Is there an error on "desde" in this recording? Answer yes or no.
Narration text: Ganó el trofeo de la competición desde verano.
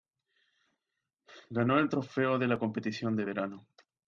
yes